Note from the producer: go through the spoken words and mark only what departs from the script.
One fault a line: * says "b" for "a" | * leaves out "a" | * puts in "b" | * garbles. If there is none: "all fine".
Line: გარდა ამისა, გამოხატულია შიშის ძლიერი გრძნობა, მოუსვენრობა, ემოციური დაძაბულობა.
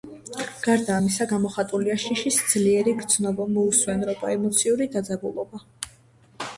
all fine